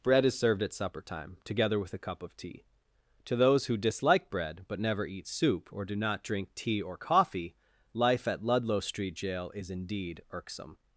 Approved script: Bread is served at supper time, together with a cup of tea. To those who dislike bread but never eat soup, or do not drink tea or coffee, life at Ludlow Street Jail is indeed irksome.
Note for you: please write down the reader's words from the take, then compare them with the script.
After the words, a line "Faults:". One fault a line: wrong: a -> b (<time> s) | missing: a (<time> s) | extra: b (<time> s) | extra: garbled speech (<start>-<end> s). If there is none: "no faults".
Bread is served at supper time, together with a cup of tea. To those who dislike bread but never eat soup, or do not drink tea or coffee, life at Ludlow Street Jail is indeed irksome.
Faults:
no faults